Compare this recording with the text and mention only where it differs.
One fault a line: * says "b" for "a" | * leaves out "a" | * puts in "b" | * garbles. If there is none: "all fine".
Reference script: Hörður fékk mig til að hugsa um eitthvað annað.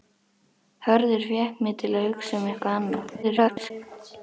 * garbles